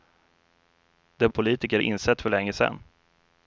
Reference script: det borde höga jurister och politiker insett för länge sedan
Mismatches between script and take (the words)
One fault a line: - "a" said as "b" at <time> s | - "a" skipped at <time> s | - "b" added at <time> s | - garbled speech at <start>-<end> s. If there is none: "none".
- "borde höga jurister" skipped at 1.3 s